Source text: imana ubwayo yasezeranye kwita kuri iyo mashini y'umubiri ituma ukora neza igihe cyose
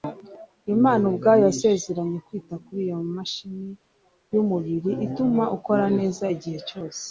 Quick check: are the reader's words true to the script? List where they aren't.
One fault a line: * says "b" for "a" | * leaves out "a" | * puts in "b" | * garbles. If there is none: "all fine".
all fine